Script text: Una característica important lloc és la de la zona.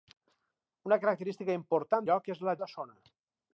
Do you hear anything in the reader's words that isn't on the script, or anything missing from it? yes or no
no